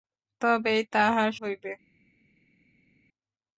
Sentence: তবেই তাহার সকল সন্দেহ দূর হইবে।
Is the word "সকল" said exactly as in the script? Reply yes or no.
no